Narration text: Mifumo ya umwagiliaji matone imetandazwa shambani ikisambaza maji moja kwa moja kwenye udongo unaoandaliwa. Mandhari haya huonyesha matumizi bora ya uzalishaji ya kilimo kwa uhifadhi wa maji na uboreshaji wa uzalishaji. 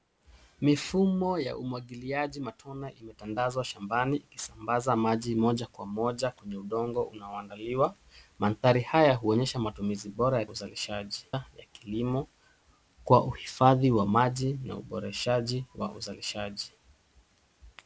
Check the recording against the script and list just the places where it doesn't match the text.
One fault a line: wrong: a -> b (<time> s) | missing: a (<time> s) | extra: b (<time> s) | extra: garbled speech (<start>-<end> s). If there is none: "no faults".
no faults